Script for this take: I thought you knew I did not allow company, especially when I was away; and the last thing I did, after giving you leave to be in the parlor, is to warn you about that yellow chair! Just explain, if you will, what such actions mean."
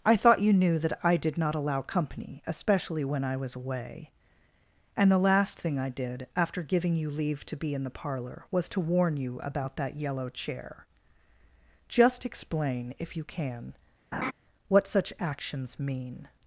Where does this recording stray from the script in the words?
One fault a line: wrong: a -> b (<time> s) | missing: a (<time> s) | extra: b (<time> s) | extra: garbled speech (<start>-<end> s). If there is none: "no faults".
extra: that (0.8 s)
wrong: is -> was (8.5 s)
wrong: will -> can (13.2 s)